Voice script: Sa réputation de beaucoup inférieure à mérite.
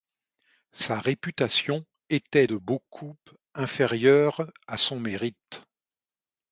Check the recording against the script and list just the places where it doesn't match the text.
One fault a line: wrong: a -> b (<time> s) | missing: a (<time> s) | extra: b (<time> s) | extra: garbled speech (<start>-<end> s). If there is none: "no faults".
extra: était (2.1 s)
extra: son (4.7 s)